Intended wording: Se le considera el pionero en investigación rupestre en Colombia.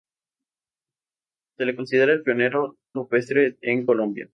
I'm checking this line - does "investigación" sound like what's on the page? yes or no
no